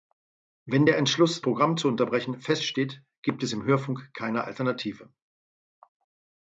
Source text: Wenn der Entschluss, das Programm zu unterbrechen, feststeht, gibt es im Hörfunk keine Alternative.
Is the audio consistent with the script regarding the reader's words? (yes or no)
no